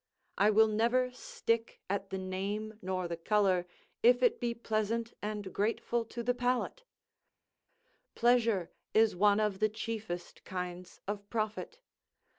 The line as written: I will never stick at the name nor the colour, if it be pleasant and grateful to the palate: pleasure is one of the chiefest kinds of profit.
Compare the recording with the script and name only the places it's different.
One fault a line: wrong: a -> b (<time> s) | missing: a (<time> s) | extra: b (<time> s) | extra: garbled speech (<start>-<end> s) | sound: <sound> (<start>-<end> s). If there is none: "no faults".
no faults